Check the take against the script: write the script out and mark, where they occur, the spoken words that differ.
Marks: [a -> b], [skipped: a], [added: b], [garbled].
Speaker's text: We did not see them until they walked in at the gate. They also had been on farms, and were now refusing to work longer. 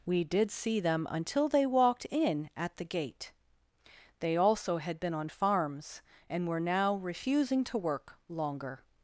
We did [skipped: not] see them until they walked in at the gate. They also had been on farms, and were now refusing to work longer.